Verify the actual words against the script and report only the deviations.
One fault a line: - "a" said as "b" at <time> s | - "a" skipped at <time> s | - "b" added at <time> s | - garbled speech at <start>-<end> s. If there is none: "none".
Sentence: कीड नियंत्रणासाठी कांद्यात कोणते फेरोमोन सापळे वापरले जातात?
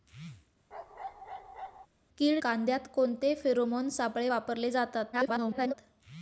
- "नियंत्रणासाठी" skipped at 2.4 s
- garbled speech at 5.1-5.7 s